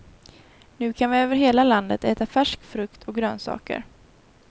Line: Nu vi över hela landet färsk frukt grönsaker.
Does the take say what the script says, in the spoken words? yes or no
no